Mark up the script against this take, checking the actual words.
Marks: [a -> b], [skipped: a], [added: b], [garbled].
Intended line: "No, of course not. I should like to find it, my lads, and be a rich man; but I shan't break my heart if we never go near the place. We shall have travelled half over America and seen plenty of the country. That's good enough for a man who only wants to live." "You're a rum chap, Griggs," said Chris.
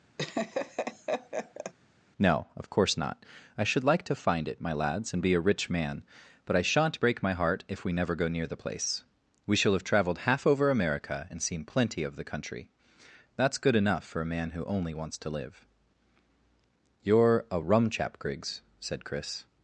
"No, of course not. I should like to find it, my lads, and be a rich man; but I shan't break my heart if we never go near the place. We shall have travelled half over America and seen plenty of the country. That's good enough for a man who only wants to live." "You're a rum chap, Griggs," said Chris.